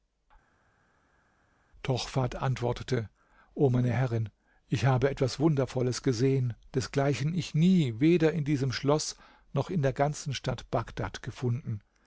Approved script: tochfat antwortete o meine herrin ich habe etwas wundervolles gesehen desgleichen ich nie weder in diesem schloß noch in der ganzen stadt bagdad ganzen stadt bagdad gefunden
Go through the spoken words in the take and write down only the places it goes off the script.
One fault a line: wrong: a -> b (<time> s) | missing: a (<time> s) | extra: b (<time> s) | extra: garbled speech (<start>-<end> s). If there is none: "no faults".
missing: ganzen stadt bagdad (11.2 s)